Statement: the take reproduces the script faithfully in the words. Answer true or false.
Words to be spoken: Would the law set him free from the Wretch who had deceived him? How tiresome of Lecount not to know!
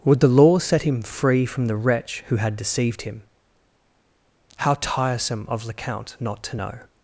true